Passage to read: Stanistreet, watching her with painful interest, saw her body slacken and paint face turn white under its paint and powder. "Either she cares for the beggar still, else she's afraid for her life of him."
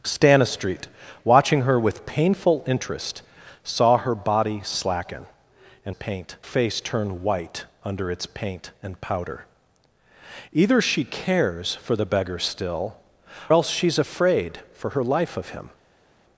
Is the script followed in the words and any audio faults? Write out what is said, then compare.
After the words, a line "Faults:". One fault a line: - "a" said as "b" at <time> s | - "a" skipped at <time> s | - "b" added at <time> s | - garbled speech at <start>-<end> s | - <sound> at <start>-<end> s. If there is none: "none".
Stanistreet, watching her with painful interest, saw her body slacken and paint face turn white under its paint and powder. "Either she cares for the beggar still, else she's afraid for her life of him."
Faults:
none